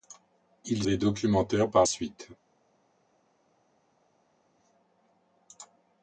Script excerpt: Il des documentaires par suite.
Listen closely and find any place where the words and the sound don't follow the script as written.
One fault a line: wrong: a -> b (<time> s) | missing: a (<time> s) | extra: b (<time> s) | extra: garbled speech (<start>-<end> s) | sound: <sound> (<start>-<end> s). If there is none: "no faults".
no faults